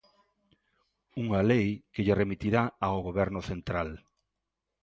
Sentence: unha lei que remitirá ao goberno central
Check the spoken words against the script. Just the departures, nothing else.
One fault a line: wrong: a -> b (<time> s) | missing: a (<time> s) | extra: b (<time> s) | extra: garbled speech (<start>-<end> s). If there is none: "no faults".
extra: lle (2.0 s)